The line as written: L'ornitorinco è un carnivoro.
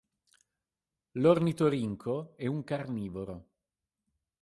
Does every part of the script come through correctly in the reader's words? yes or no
yes